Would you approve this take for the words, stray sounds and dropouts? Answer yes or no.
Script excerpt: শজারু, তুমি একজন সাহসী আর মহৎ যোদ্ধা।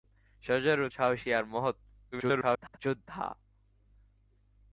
no